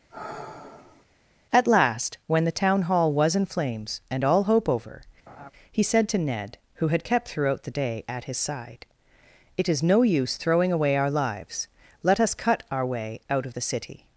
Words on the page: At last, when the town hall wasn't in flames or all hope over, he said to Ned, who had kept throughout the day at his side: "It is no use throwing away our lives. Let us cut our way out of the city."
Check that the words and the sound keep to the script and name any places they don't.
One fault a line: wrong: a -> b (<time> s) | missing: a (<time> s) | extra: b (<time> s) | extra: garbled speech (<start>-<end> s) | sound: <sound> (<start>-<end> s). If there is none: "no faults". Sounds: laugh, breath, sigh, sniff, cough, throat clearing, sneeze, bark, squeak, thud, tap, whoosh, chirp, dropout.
sound: sigh (0.1-1.1 s)
wrong: wasn't -> was (3.1 s)
wrong: or -> and (4.1 s)
sound: laugh (5.3-5.5 s)